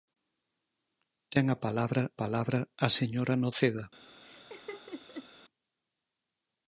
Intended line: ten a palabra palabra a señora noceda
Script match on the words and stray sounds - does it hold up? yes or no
no